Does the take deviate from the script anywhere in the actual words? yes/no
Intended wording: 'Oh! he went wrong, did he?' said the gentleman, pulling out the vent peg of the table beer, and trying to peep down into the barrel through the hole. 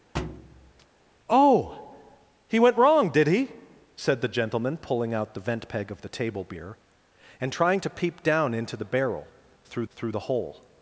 yes